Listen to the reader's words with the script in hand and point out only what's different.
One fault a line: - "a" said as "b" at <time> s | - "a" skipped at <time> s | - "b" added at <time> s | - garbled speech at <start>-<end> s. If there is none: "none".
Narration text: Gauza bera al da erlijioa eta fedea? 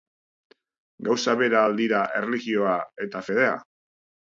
- "da" said as "dira" at 1.8 s